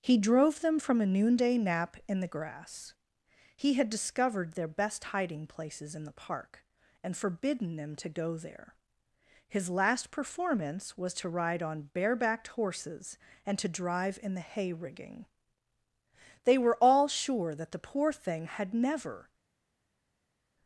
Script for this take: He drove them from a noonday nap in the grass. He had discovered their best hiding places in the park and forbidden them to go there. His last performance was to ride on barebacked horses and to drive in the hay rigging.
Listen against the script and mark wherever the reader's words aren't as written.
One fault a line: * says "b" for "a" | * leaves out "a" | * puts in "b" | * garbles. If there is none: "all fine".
* puts in "They were all sure that the poor thing had never"